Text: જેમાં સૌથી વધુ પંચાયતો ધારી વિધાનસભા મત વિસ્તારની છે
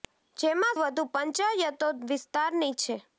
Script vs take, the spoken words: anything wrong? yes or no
yes